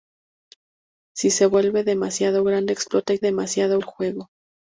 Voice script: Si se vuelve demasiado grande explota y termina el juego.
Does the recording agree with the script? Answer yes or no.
no